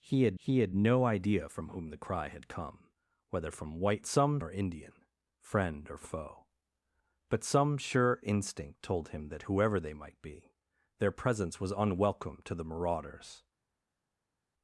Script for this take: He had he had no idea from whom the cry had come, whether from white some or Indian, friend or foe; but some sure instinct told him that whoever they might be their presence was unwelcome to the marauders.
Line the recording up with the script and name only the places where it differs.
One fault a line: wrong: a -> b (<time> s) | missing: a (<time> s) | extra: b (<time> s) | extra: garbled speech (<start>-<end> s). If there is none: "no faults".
no faults